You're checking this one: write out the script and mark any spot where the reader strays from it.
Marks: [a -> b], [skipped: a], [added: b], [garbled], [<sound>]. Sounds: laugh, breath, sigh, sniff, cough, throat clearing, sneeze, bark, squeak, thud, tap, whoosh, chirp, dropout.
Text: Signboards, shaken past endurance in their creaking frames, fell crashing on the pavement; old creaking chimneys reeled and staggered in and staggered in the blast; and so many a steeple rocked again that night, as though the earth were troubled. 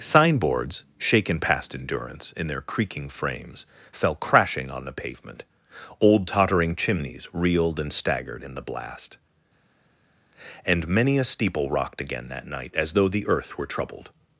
Signboards, shaken past endurance in their creaking frames, fell crashing on the pavement; old [creaking -> tottering] chimneys reeled and staggered in [skipped: and staggered in] the blast; and [skipped: so] many a steeple rocked again that night, as though the earth were troubled.